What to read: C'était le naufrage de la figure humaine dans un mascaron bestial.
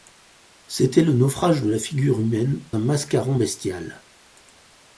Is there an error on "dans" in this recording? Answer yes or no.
yes